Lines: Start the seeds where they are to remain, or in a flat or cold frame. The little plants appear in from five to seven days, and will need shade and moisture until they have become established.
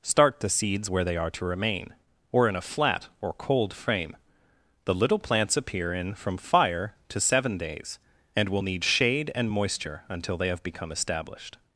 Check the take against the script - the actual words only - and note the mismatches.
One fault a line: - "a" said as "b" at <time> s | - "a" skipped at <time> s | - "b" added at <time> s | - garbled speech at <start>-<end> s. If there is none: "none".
- "five" said as "fire" at 6.4 s